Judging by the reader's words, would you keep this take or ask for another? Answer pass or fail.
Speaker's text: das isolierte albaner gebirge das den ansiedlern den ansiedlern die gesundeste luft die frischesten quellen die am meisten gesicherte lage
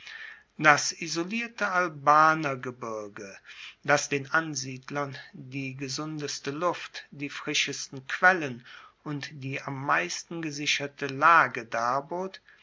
fail